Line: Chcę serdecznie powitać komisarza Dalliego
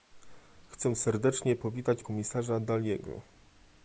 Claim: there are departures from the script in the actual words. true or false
false